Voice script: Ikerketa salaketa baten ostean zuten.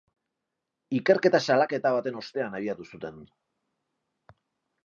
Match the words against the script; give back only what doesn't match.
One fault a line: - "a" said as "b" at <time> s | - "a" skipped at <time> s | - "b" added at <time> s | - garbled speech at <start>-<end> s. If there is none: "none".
- "abiatu" added at 2.6 s